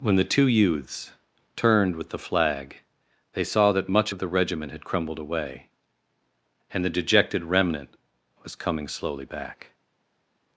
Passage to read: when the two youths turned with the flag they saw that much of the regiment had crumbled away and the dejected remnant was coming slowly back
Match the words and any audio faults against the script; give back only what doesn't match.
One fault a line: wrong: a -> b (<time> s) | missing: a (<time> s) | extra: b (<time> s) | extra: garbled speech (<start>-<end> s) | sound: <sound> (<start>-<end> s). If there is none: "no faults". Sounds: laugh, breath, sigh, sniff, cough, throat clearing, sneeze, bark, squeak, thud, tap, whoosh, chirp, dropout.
no faults